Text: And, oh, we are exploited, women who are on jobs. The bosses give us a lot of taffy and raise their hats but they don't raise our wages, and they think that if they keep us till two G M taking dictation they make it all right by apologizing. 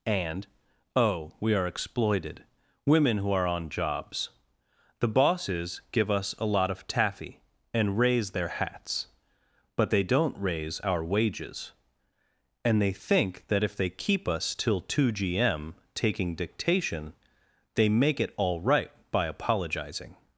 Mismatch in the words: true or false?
false